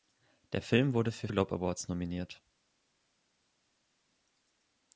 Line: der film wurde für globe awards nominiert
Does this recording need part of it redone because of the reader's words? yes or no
no